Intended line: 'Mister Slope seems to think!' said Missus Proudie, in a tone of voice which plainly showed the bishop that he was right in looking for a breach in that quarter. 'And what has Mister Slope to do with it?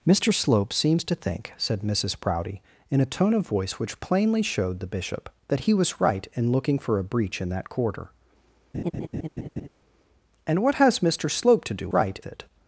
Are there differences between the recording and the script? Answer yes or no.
yes